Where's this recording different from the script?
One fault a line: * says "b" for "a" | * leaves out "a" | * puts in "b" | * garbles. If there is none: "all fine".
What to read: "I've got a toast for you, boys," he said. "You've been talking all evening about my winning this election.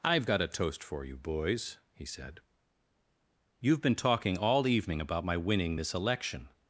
all fine